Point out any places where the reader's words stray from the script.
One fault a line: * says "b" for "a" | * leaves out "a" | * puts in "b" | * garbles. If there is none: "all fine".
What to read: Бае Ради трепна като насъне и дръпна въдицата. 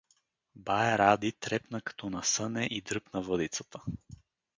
all fine